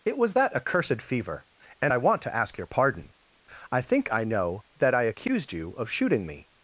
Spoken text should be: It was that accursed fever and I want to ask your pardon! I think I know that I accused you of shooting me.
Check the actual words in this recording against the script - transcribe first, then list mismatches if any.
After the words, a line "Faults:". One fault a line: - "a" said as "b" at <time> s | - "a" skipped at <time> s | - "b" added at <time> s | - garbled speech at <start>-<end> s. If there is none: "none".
It was that accursed fever and I want to ask your pardon! I think I know that I accused you of shooting me.
Faults:
none